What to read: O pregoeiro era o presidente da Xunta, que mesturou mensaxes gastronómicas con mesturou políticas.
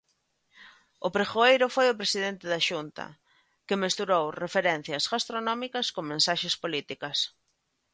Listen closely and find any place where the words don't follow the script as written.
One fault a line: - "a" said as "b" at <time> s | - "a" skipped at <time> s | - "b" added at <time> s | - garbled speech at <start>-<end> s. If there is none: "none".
- "era" said as "foi" at 1.8 s
- "mensaxes" said as "referencias" at 4.4 s
- "mesturou" said as "mensaxes" at 6.1 s